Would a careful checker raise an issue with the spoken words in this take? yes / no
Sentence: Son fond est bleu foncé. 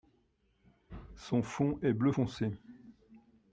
no